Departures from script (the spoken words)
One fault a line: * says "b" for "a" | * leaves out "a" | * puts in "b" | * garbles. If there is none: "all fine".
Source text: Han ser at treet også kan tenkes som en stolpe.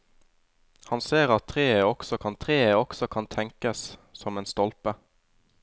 * puts in "treet også kan"